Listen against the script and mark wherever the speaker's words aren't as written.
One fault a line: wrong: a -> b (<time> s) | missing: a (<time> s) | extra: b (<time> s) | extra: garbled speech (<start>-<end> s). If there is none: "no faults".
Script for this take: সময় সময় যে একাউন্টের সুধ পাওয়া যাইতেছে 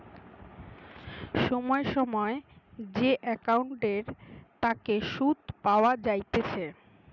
extra: তাকে (4.6 s)